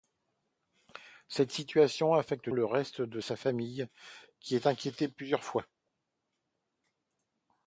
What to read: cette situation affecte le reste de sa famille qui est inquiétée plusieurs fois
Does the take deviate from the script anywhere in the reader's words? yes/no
no